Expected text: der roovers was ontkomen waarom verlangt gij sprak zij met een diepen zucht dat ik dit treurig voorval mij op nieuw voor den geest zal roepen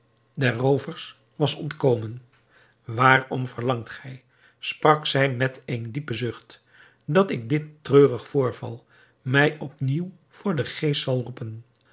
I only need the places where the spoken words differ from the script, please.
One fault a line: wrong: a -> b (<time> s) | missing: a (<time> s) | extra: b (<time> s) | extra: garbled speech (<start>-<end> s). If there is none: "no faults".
no faults